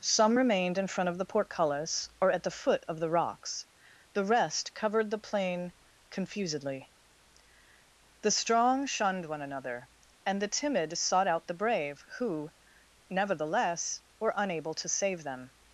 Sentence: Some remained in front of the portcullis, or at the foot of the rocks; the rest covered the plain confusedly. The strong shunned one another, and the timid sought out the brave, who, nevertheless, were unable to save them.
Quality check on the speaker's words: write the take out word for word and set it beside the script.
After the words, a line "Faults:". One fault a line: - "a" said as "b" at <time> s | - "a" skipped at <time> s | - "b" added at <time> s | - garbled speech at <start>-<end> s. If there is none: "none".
Some remained in front of the portcullis, or at the foot of the rocks; the rest covered the plain confusedly. The strong shunned one another, and the timid sought out the brave, who, nevertheless, were unable to save them.
Faults:
none